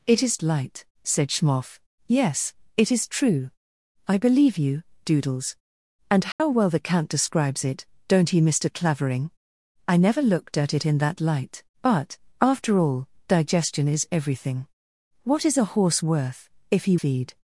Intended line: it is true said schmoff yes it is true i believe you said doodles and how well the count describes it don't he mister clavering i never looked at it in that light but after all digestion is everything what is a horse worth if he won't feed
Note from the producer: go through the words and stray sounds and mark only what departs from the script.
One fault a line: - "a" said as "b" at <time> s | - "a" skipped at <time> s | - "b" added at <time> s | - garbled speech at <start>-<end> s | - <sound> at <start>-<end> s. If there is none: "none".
- "true" said as "light" at 0.4 s
- "said" skipped at 4.8 s
- dropout at 6.3-6.4 s
- "won't" skipped at 17.0 s